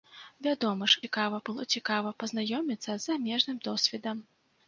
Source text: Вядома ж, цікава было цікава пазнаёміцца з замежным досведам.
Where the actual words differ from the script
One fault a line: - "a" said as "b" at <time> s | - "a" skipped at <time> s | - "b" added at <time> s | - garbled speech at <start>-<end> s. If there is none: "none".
none